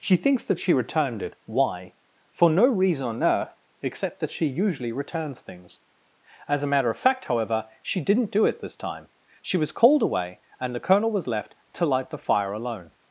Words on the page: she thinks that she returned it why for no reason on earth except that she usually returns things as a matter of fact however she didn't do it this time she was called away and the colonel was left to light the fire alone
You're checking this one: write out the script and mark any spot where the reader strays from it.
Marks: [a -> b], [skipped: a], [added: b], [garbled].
she thinks that she returned it why for no reason on earth except that she usually returns things as a matter of fact however she didn't do it this time she was called away and the colonel was left to light the fire alone